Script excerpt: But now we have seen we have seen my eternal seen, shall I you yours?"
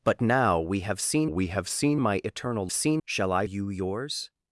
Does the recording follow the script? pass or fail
pass